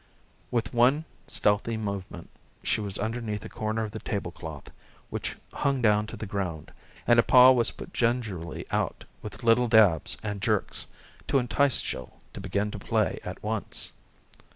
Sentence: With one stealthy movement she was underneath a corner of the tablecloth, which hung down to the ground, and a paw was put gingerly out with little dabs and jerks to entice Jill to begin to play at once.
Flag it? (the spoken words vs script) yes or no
no